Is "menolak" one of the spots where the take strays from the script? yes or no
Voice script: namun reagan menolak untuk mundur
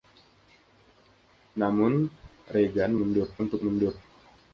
yes